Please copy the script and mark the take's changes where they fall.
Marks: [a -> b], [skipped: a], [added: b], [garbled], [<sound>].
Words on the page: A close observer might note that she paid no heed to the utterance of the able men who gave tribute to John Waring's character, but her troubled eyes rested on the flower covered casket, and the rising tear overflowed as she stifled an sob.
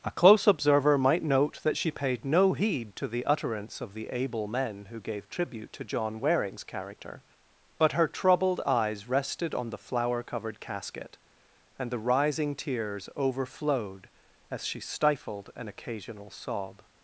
A close observer might note that she paid no heed to the utterance of the able men who gave tribute to John Waring's character, but her troubled eyes rested on the flower covered casket, and the rising [tear -> tears] overflowed as she stifled an [added: occasional] sob.